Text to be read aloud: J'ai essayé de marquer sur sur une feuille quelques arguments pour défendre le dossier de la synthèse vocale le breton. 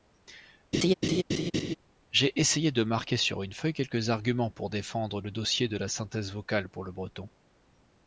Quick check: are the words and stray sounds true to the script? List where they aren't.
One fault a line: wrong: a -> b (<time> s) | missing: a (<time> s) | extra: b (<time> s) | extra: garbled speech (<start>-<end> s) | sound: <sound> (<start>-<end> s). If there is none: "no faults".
sound: laugh (0.7-1.8 s)
missing: sur (3.4 s)
extra: pour (6.7 s)